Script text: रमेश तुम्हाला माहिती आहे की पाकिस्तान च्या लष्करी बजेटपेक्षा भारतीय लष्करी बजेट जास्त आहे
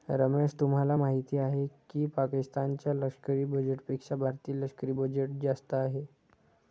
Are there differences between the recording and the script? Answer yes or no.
no